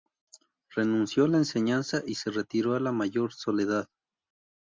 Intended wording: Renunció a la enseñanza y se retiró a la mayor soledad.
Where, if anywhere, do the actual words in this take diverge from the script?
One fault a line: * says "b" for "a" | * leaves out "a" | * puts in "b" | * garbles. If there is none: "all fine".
all fine